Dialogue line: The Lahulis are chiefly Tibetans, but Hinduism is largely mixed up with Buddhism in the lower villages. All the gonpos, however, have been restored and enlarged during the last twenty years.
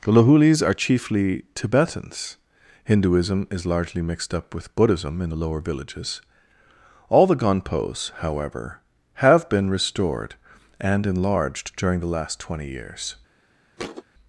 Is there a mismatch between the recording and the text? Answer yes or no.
yes